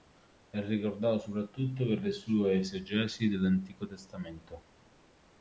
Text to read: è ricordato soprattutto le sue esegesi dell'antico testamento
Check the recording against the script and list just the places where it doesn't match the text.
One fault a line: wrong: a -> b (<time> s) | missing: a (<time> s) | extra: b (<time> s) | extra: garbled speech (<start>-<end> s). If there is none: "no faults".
extra: per (1.9 s)